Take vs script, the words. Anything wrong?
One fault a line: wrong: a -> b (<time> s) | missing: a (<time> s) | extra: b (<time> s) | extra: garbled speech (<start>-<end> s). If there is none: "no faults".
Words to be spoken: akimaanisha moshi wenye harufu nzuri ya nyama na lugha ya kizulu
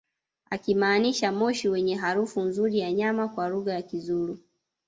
wrong: na -> kwa (3.3 s)